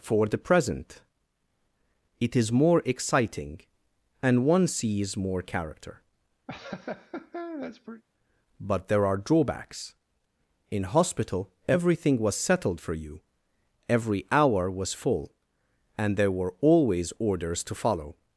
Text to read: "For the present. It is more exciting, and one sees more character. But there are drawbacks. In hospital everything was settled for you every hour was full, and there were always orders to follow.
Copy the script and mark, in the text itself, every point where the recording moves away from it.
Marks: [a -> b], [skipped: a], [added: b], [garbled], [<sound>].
"For the present. It is more exciting, and one sees more character. [laugh] But there are drawbacks. In hospital everything was settled for you every hour was full, and there were always orders to follow.